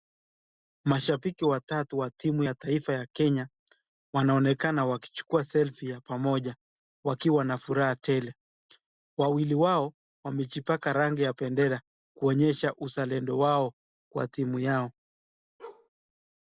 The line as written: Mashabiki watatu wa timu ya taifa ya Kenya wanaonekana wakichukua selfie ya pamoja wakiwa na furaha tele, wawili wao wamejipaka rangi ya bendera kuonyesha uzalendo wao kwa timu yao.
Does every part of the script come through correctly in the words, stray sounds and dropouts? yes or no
no